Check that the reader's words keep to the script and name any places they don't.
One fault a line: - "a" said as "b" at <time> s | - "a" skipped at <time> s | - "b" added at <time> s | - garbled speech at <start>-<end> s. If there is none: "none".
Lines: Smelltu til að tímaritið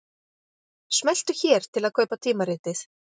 - "hér" added at 1.4 s
- "kaupa" added at 2.0 s